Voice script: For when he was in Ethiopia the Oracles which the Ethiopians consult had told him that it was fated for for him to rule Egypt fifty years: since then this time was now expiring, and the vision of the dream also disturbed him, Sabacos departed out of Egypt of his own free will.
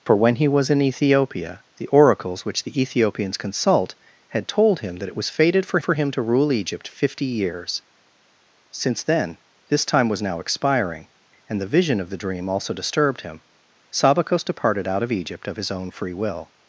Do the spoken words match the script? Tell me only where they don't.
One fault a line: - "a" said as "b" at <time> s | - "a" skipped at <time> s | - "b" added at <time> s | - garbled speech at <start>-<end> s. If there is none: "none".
none